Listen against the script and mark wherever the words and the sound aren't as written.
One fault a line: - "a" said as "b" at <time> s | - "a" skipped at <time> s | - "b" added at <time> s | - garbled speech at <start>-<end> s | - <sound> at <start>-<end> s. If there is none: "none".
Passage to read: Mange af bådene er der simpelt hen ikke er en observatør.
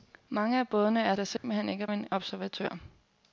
- dropout at 1.4-1.4 s